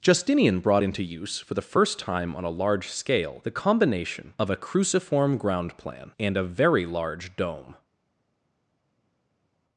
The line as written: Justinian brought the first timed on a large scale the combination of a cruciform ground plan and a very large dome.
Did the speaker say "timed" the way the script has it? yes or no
no